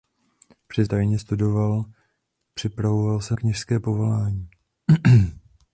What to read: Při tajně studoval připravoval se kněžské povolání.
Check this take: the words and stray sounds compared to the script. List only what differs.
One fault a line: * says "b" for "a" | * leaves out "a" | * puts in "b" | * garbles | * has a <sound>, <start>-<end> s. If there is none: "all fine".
all fine